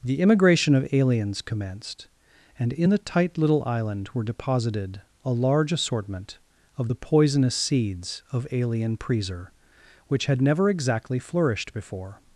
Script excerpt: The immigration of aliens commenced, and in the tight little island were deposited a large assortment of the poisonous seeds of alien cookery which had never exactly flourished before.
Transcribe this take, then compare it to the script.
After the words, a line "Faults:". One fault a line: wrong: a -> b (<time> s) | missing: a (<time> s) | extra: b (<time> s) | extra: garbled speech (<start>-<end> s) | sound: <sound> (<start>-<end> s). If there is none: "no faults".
The immigration of aliens commenced, and in the tight little island were deposited a large assortment of the poisonous seeds of alien preser which had never exactly flourished before.
Faults:
wrong: cookery -> preser (9.0 s)